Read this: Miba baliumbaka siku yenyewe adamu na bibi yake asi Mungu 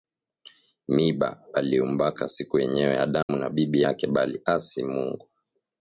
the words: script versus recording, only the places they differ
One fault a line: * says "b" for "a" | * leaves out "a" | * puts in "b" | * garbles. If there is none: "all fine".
* puts in "bali"